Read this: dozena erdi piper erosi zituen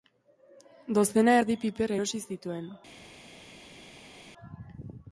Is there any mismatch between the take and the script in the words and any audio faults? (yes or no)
no